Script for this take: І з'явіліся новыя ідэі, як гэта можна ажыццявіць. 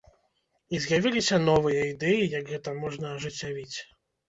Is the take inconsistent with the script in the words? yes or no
no